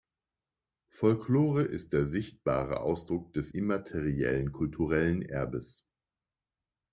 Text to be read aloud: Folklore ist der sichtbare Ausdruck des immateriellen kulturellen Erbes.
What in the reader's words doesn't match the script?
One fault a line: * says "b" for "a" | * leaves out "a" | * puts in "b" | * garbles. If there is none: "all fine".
all fine